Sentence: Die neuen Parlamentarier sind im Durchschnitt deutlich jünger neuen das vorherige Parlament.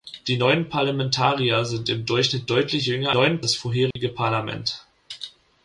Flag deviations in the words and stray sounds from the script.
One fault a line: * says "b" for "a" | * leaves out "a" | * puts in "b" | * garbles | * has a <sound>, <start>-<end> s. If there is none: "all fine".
* has a dropout, 3.9-4.0 s